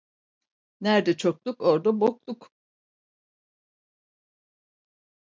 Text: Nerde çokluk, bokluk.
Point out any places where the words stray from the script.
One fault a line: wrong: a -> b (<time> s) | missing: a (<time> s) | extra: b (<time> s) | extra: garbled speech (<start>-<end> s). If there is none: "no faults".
extra: orda (1.6 s)